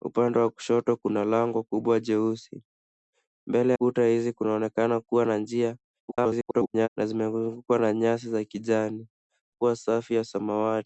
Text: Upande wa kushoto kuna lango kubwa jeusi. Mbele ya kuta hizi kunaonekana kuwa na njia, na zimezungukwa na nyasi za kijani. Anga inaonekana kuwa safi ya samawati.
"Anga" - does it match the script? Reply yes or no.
no